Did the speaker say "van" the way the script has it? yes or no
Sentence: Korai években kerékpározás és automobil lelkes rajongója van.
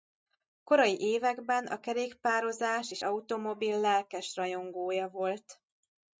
no